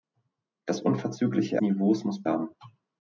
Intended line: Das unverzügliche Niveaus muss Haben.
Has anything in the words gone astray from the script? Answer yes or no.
no